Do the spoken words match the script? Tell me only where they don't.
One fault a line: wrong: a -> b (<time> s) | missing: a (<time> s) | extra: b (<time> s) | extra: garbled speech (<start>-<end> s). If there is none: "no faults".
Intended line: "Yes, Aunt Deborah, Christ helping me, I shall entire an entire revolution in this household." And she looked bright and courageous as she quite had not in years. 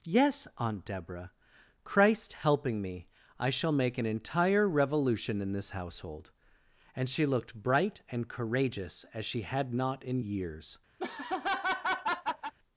wrong: entire -> make (3.7 s)
missing: quite (9.4 s)